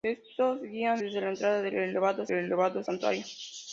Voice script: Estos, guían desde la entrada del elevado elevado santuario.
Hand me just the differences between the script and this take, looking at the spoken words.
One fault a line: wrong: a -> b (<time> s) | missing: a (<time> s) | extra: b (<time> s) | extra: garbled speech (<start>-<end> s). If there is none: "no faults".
no faults